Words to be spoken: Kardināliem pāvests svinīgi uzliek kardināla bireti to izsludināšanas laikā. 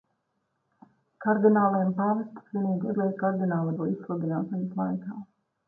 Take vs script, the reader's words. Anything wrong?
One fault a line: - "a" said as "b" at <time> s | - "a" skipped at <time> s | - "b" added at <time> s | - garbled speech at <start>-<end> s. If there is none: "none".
- "bireti" skipped at 3.8 s